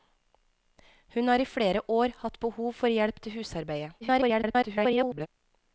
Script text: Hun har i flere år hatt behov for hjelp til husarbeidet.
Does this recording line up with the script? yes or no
no